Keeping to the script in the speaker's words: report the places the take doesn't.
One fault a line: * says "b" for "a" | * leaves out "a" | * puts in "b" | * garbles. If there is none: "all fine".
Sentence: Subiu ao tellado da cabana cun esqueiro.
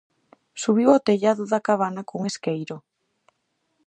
all fine